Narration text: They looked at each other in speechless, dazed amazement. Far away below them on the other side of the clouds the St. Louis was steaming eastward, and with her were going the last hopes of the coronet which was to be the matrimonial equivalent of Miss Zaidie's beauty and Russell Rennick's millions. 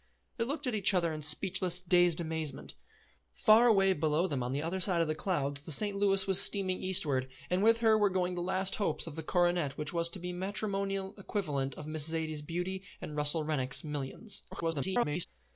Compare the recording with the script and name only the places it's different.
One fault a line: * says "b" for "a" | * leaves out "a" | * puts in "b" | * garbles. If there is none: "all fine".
* garbles